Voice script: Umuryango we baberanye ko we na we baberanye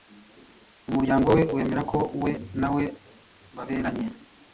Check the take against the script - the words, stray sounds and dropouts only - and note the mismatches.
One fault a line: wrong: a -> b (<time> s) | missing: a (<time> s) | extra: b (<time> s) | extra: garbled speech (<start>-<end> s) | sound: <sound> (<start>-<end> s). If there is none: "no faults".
wrong: baberanye -> wemera (1.6 s)